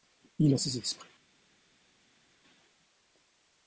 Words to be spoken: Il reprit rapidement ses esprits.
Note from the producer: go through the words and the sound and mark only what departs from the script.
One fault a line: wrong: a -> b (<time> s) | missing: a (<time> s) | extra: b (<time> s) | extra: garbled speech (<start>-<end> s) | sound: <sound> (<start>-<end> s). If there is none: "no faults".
missing: reprit rapidement (0.6 s)